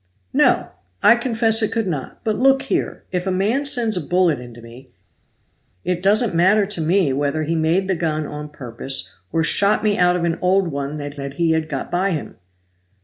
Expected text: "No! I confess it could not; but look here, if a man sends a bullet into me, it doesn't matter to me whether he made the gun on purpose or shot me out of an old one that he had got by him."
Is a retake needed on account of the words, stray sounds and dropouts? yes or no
yes